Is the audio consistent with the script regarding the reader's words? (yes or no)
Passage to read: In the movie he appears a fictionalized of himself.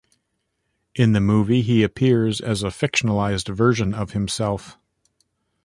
no